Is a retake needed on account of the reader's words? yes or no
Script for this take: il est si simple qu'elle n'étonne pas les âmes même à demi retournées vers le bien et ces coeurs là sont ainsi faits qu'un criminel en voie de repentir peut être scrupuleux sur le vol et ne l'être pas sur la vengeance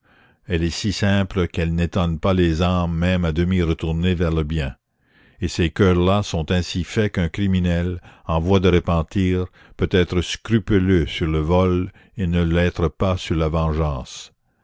yes